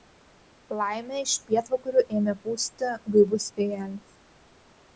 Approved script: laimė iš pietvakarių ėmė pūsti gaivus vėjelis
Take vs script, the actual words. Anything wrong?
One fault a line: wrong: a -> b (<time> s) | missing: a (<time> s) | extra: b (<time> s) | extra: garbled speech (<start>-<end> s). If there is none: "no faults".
no faults